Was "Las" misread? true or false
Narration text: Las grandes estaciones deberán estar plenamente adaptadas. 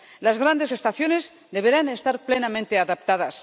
false